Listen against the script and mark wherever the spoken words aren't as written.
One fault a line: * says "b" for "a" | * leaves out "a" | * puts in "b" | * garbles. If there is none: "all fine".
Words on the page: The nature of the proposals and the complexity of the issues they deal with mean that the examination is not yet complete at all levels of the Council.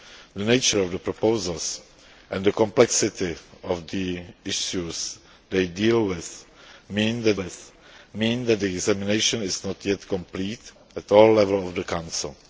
* puts in "with mean that"